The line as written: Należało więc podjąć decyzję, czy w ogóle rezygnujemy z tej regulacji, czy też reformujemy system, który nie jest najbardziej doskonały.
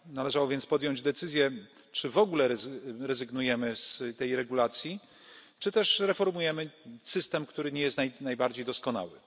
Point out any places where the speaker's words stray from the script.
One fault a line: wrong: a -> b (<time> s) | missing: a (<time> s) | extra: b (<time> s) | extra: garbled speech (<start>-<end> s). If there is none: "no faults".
no faults